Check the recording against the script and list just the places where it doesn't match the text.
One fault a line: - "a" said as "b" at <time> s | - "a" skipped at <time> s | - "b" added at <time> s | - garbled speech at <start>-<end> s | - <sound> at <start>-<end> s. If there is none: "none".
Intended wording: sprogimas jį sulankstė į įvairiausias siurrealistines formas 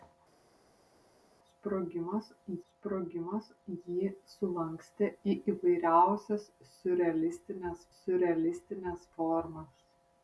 - "sprogimas" added at 2.7 s
- "siurrealistines" added at 7.9 s